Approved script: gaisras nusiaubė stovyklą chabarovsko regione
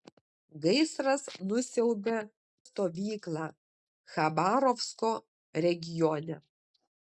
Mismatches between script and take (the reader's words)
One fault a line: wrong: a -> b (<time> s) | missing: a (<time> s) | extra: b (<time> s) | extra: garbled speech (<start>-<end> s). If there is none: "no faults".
no faults